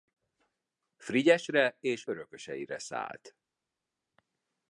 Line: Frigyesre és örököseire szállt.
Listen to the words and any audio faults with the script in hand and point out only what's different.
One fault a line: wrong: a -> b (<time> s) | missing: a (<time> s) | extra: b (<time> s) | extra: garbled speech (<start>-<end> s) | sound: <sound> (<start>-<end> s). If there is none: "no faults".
no faults